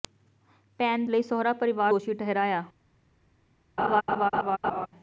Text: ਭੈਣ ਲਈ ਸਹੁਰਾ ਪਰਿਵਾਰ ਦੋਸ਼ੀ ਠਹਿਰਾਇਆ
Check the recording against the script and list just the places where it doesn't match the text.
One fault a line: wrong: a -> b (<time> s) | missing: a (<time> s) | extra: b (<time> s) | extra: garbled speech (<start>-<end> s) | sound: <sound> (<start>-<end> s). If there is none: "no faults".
sound: laugh (3.8-4.9 s)